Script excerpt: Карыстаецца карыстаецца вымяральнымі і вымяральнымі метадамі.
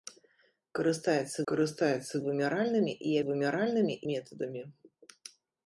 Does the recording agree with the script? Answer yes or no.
yes